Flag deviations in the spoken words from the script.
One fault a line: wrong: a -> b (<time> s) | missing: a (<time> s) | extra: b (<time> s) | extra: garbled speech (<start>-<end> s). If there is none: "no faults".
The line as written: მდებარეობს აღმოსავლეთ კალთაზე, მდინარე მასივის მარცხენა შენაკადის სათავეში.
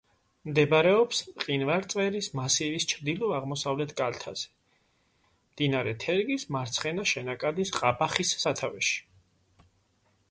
extra: მყინვარწვერის მასივის ჩრდილო (1.3 s)
wrong: მასივის -> თერგის (6.0 s)
extra: ყაბახის (7.8 s)